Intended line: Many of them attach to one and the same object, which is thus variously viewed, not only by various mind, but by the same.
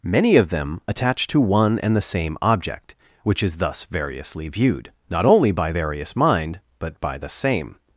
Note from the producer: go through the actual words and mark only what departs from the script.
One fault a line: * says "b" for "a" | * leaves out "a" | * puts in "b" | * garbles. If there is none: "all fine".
all fine